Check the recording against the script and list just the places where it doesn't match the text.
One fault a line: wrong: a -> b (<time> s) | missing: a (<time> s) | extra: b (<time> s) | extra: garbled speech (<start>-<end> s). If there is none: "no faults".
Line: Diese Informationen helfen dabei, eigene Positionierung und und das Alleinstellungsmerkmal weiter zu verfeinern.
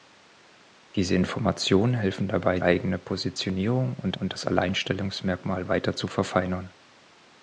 no faults